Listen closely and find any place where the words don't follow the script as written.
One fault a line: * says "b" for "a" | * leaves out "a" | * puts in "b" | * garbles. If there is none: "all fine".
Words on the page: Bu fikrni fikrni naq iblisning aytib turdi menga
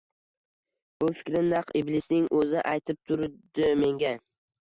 * leaves out "fikrni"
* puts in "o`zi"